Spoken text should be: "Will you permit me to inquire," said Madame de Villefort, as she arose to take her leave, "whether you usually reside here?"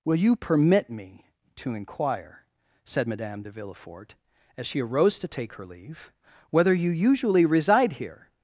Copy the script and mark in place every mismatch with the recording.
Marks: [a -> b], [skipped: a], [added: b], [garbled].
"Will you permit me to inquire," said Madame de Villefort, as she arose to take her leave, "whether you usually reside here?"